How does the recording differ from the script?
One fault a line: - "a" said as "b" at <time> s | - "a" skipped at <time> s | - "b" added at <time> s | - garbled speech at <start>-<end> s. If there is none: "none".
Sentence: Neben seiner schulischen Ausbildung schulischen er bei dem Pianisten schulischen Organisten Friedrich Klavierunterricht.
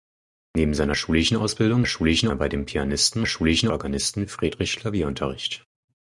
none